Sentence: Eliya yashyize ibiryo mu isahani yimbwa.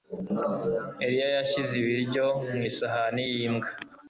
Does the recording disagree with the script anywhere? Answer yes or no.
no